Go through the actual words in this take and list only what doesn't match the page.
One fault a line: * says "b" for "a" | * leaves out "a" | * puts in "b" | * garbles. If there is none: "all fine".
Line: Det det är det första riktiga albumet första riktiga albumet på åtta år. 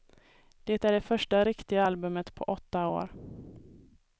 * leaves out "det"
* leaves out "första riktiga albumet"